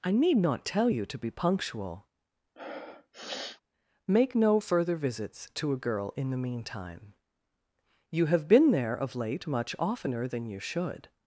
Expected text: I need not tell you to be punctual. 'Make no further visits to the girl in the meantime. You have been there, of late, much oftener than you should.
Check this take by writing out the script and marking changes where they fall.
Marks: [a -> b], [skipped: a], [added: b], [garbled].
I need not tell you to be punctual. 'Make no further visits to [the -> a] girl in the meantime. You have been there, of late, much oftener than you should.